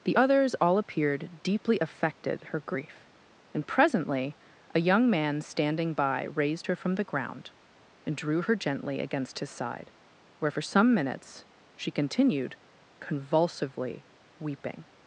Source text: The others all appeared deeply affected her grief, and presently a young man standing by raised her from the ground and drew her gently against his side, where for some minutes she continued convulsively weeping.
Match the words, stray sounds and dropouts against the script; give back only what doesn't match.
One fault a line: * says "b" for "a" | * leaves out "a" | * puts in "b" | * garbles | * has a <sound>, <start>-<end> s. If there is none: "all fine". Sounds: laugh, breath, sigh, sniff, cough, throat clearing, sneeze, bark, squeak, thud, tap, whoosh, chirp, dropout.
all fine